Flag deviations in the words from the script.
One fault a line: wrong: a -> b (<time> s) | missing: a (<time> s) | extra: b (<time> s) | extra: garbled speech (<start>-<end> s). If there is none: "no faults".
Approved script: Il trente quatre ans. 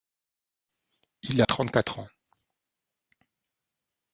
no faults